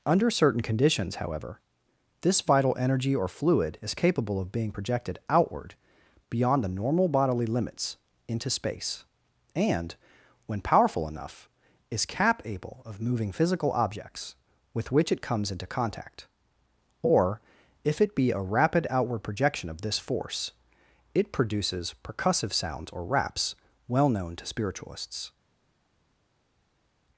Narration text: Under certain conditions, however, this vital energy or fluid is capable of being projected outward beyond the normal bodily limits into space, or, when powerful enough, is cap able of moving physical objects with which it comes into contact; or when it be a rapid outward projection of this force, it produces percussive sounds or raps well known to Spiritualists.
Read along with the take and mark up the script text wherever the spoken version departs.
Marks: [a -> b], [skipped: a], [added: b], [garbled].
Under certain conditions, however, this vital energy or fluid is capable of being projected outward beyond the normal bodily limits into space, [or, -> and] when powerful enough, is cap able of moving physical objects with which it comes into contact; or [when -> if] it be a rapid outward projection of this force, it produces percussive sounds or raps well known to Spiritualists.